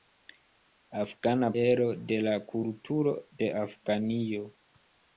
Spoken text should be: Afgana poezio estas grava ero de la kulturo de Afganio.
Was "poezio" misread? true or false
true